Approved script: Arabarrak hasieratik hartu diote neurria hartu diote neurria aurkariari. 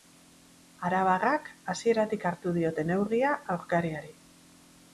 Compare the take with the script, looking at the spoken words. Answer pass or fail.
fail